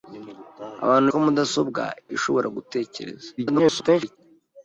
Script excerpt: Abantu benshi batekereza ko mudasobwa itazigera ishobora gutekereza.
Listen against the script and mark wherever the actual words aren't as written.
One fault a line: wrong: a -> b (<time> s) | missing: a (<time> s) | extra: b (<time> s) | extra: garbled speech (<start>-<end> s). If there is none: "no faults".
missing: benshi batekereza (1.1 s)
missing: itazigera (1.8 s)
extra: garbled speech (3.4-4.2 s)